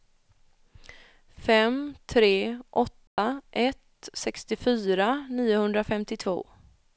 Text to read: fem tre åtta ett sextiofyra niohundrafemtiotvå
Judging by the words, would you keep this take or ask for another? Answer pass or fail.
pass